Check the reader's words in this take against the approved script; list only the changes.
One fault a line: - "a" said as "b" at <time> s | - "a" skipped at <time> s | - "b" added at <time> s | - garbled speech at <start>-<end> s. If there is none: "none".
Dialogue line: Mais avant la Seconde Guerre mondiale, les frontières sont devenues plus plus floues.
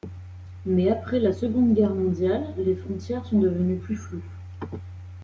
- "avant" said as "après" at 0.9 s
- "plus" skipped at 4.0 s